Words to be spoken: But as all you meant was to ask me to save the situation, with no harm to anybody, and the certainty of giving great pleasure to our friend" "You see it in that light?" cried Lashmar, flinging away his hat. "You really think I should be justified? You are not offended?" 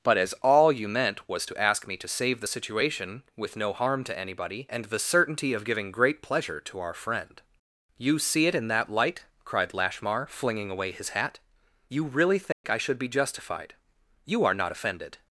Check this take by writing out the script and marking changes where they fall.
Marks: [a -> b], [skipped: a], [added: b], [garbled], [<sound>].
But as all you meant was to ask me to save the situation, with no harm to anybody, and the certainty of giving great pleasure to our friend" "You see it in that light?" cried Lashmar, flinging away his hat. "You really think [dropout] I should be justified? You are not offended?"